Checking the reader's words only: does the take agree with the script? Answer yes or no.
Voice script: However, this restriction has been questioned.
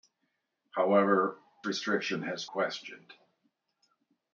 no